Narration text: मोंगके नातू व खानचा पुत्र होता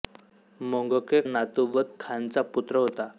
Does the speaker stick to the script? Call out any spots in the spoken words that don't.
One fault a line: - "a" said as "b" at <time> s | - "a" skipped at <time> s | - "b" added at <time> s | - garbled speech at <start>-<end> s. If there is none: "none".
none